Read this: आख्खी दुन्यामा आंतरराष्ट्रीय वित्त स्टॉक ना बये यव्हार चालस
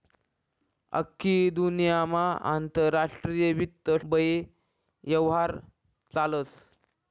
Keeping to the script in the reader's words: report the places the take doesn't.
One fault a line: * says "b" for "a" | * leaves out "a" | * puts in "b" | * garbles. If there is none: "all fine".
* leaves out "स्टॉक ना"